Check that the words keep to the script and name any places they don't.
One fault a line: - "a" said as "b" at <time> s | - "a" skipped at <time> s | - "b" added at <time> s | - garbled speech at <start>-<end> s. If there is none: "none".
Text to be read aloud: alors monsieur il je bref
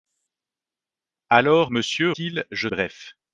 none